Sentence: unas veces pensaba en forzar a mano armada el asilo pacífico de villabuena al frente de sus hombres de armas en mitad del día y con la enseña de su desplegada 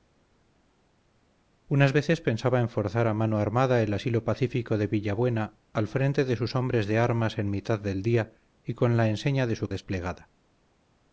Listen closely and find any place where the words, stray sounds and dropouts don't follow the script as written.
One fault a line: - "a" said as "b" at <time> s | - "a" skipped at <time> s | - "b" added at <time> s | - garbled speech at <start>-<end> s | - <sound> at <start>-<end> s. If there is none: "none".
none